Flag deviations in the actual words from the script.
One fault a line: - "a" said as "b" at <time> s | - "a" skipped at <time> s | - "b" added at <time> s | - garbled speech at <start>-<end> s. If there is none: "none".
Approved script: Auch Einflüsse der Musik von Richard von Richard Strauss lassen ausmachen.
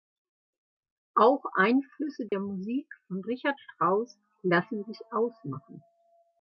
- "von Richard" skipped at 3.6 s
- "sich" added at 4.8 s